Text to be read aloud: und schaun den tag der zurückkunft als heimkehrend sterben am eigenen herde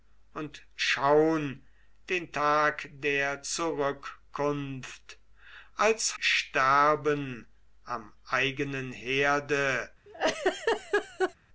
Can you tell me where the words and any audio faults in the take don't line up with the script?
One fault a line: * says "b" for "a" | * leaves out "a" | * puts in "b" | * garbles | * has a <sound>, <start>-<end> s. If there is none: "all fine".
* leaves out "heimkehrend"
* has a laugh, 10.1-11.3 s